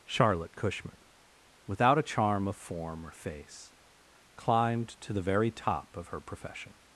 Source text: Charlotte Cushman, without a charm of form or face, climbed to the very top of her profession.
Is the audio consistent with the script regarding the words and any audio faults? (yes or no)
yes